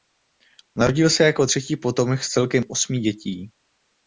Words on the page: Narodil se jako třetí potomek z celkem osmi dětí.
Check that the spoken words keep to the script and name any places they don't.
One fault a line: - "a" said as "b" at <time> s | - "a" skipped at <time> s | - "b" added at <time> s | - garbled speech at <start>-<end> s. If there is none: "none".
none